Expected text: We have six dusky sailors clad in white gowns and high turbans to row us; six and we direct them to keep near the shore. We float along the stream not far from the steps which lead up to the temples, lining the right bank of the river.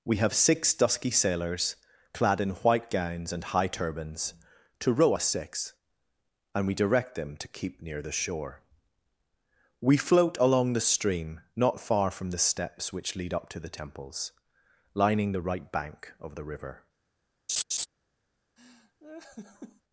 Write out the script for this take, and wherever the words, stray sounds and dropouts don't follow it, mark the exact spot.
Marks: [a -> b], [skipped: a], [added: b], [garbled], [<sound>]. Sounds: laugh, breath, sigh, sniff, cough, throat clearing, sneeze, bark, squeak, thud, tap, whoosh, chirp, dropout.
We have six dusky sailors clad in white gowns and high turbans to row us; six and we direct them to keep near the shore. We float along the stream not far from the steps which lead up to the temples, lining the right bank of the river. [laugh] [laugh]